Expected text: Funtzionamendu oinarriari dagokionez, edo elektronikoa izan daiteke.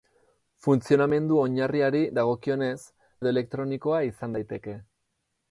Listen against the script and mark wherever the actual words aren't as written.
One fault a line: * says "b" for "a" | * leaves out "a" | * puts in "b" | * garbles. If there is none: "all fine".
all fine